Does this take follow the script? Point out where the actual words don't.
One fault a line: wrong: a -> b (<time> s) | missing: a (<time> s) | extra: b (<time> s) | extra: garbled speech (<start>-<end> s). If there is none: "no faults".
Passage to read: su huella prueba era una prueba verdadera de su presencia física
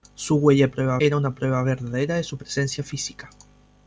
no faults